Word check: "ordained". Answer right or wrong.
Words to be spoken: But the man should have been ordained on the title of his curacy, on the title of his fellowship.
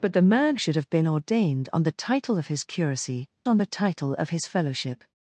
right